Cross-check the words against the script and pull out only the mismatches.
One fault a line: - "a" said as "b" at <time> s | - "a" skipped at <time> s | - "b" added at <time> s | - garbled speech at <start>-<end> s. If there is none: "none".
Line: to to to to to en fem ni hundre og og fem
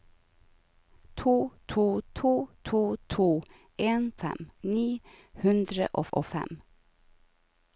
none